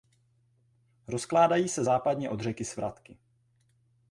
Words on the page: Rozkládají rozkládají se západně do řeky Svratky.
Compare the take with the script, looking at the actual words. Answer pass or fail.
fail